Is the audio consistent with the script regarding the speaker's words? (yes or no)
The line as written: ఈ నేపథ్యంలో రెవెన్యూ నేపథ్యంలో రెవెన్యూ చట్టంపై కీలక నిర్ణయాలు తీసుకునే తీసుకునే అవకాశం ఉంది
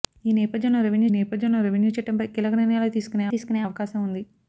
yes